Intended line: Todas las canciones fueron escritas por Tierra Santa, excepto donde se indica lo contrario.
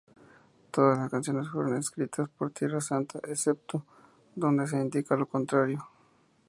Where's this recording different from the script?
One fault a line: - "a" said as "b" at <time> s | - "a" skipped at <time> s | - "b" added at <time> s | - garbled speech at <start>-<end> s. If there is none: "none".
none